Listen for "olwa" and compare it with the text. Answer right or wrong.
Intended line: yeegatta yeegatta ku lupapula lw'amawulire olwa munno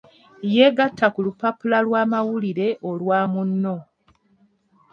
right